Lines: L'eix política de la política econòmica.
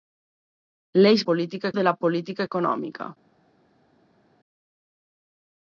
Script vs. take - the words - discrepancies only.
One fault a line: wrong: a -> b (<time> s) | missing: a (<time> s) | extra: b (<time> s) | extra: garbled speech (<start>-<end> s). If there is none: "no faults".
no faults